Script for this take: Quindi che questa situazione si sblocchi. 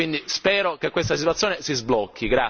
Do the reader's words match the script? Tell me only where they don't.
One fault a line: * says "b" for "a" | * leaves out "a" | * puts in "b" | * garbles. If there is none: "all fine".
* puts in "spero"